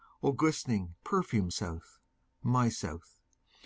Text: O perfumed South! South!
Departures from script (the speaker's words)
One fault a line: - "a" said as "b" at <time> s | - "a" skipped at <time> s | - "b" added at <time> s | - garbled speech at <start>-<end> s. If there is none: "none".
- "glistening" added at 0.3 s
- "My" added at 2.4 s